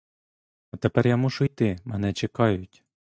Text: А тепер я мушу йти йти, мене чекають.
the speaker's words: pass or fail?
fail